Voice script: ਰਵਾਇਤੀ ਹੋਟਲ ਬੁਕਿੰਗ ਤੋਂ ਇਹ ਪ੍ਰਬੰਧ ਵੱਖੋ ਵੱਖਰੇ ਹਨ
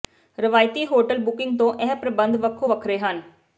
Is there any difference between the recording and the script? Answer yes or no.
no